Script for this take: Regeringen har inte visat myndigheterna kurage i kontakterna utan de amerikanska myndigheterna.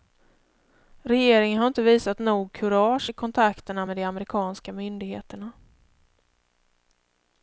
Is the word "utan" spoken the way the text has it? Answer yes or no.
no